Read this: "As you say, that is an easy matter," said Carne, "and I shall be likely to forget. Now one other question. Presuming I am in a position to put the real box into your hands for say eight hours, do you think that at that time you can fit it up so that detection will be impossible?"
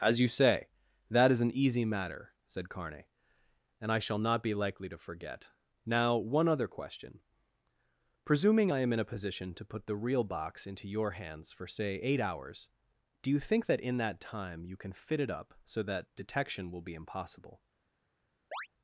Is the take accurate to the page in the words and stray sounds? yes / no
no